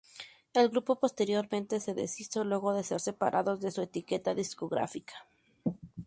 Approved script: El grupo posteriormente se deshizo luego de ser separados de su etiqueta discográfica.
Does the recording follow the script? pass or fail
pass